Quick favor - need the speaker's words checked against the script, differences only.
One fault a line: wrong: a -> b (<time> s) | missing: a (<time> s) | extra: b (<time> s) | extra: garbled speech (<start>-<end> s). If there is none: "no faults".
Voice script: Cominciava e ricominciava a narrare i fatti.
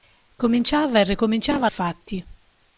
missing: narrare (1.7 s)